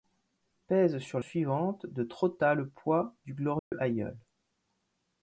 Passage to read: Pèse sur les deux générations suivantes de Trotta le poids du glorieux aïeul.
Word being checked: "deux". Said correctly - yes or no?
no